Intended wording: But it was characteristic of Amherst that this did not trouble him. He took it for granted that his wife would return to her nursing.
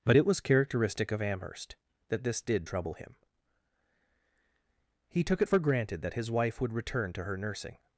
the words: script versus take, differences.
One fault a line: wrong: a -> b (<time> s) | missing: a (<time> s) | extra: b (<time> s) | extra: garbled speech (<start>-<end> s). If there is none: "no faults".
missing: not (2.7 s)